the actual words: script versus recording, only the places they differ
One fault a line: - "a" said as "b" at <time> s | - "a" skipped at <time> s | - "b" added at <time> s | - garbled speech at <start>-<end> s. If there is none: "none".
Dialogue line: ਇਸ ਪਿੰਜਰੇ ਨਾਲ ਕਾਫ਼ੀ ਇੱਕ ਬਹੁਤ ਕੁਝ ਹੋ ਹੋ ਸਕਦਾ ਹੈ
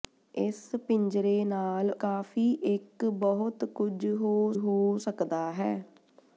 none